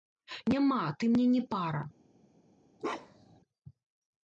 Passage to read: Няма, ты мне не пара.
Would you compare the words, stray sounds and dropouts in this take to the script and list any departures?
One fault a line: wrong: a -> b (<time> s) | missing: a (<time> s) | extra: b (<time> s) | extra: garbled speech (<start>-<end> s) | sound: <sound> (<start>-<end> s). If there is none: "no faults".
sound: bark (2.8-3.4 s)